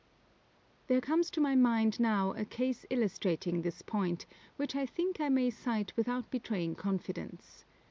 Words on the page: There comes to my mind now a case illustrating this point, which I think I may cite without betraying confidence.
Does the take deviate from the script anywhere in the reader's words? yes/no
no